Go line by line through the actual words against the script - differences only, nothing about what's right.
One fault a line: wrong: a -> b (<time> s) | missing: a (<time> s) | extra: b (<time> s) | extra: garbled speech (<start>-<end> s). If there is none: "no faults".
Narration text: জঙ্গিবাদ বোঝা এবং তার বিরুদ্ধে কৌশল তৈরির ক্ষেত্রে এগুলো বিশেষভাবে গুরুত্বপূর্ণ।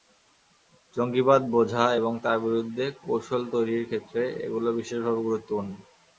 no faults